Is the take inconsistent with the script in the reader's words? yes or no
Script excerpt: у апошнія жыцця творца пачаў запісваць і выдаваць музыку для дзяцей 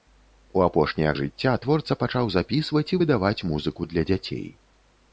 no